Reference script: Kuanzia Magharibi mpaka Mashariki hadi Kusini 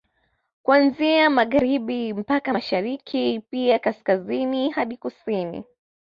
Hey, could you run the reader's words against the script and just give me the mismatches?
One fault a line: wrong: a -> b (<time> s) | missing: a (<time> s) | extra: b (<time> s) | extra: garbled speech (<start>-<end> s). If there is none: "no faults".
extra: pia Kaskazini (3.5 s)